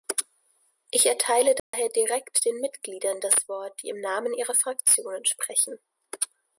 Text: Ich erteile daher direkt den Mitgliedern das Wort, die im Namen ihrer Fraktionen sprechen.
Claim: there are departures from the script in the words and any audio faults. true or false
true